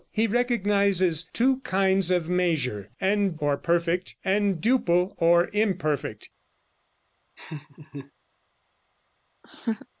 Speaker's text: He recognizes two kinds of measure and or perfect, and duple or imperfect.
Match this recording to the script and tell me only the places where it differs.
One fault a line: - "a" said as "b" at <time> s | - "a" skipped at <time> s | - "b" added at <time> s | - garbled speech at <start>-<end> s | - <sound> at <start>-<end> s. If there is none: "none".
- laugh at 7.4-8.1 s
- laugh at 9.4-9.9 s